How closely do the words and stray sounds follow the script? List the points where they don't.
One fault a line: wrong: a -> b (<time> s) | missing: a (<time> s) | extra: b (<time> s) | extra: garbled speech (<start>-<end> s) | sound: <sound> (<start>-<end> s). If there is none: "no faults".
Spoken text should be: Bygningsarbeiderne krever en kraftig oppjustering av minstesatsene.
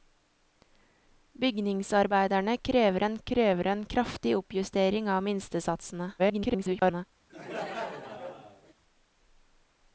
extra: krever en (3.2 s)
extra: garbled speech (6.2-7.0 s)
sound: laugh (7.3-8.7 s)